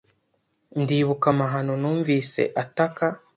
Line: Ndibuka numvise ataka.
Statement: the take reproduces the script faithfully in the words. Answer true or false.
false